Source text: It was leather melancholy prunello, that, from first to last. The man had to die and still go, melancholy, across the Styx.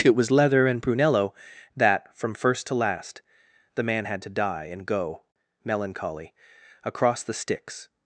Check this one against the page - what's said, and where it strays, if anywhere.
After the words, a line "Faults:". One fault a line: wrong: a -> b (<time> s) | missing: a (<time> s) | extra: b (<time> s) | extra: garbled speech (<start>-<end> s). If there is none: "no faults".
It was leather and prunello, that, from first to last. The man had to die and go, melancholy, across the Styx.
Faults:
wrong: melancholy -> and (0.7 s)
missing: still (4.8 s)